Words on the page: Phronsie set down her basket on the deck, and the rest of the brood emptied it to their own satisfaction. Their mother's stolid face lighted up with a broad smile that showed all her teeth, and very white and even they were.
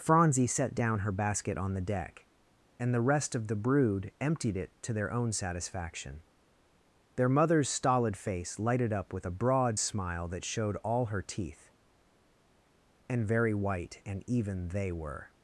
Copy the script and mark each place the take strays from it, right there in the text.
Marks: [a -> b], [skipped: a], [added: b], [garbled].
Phronsie set down her basket on the deck, and the rest of the brood emptied it to their own satisfaction. Their mother's stolid face lighted up with a broad smile that showed all her teeth, and very white and even they were.